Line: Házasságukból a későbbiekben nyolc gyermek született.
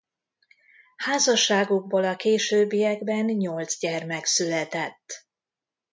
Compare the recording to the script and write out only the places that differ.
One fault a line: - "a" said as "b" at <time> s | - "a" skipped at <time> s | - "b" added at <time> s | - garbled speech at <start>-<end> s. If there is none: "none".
none